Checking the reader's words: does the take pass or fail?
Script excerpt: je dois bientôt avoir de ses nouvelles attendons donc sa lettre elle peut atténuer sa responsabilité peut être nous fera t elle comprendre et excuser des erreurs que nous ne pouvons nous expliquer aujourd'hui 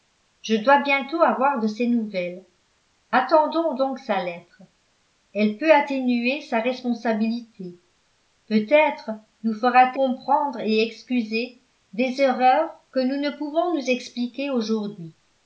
fail